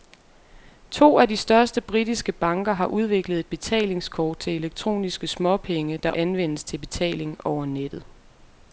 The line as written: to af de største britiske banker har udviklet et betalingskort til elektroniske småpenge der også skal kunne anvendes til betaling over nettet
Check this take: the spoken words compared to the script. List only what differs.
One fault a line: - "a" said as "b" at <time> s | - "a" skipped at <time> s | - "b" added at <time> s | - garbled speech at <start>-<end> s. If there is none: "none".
- "også skal kunne" skipped at 6.1 s